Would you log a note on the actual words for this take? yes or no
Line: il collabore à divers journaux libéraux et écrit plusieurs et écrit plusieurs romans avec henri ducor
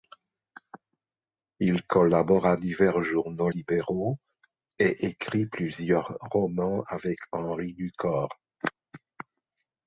yes